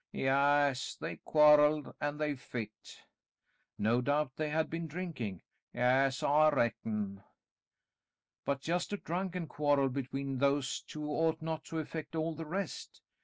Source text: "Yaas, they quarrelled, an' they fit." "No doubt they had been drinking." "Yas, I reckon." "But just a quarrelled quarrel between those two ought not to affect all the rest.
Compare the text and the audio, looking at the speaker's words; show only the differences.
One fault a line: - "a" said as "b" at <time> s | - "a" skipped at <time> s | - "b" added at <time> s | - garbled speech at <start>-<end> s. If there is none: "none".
- "quarrelled" said as "drunken" at 9.0 s